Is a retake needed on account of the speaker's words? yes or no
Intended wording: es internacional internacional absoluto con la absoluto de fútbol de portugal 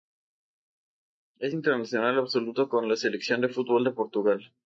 yes